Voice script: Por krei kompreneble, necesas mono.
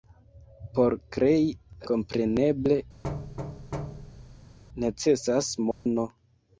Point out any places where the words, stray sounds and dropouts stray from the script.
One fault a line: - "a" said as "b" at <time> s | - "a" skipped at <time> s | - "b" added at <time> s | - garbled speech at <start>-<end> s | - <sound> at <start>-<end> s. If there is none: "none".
- thud at 3.0-4.6 s
- dropout at 5.7-5.9 s